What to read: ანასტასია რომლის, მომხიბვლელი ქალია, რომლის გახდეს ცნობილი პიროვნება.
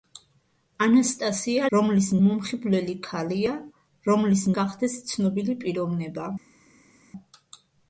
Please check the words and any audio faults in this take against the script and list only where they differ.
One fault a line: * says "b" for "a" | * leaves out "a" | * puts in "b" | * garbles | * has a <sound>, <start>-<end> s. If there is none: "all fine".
all fine